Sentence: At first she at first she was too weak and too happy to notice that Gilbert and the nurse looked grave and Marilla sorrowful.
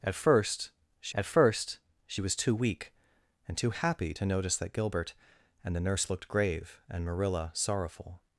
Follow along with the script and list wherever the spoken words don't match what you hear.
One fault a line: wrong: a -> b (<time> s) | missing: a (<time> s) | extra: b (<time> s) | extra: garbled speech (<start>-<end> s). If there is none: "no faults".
no faults